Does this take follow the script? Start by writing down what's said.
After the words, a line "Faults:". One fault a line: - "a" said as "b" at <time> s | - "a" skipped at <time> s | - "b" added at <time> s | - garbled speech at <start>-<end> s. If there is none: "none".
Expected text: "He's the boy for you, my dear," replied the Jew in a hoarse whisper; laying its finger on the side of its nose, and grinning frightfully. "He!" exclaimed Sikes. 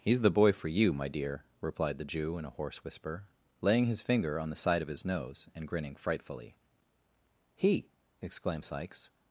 "He's the boy for you, my dear," replied the Jew in a hoarse whisper; laying his finger on the side of his nose, and grinning frightfully. "He!" exclaimed Sikes.
Faults:
- "its" said as "his" at 3.9 s
- "its" said as "his" at 4.9 s